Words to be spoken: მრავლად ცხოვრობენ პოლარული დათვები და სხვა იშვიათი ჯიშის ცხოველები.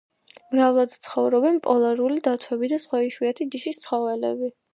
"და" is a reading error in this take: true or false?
false